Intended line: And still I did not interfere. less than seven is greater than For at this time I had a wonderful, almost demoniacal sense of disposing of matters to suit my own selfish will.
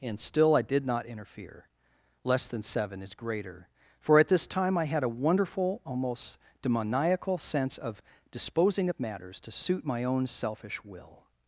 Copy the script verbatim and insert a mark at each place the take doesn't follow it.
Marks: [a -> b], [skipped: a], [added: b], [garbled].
And still I did not interfere. less than seven is greater [skipped: than] For at this time I had a wonderful, almost demoniacal sense of disposing of matters to suit my own selfish will.